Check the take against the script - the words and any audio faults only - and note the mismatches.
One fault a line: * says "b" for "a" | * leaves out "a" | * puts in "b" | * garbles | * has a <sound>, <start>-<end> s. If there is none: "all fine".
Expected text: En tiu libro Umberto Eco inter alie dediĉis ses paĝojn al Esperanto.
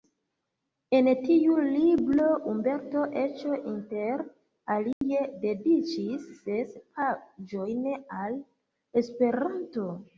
* has a dropout, 4.9-5.0 s